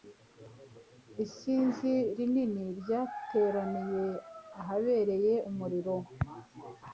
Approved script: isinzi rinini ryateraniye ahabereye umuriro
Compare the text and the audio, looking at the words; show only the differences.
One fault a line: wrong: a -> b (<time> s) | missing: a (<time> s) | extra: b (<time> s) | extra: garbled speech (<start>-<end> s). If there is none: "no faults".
no faults